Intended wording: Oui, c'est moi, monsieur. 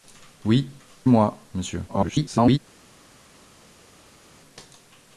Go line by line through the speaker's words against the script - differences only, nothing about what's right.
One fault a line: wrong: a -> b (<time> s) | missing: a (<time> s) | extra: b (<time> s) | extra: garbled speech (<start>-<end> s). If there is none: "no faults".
missing: c'est (0.7 s)
extra: garbled speech (1.9-2.6 s)